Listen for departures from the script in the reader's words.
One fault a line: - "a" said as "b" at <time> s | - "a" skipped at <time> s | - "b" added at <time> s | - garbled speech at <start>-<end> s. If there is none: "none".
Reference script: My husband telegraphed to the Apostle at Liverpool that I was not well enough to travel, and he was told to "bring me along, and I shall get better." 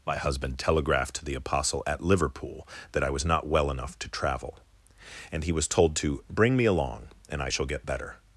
none